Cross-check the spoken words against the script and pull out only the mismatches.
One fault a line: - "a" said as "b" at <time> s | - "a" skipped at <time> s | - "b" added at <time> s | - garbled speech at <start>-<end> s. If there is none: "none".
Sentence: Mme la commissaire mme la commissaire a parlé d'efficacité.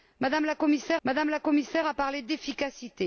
none